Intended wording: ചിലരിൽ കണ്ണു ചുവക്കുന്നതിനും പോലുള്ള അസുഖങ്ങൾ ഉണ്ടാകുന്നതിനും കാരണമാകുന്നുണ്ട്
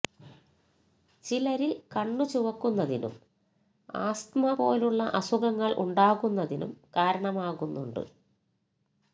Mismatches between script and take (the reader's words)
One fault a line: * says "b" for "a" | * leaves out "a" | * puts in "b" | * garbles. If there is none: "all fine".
* puts in "ആസ്തമ"